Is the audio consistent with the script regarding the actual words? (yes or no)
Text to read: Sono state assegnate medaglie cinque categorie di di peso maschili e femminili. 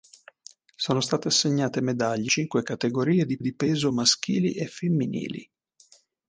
yes